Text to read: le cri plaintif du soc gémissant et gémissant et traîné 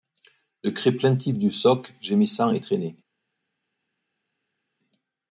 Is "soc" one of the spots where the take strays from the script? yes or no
no